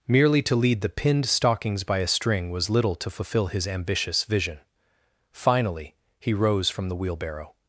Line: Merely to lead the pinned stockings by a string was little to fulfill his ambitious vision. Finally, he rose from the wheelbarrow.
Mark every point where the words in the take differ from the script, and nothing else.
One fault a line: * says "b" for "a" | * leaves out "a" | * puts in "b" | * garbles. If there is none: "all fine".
all fine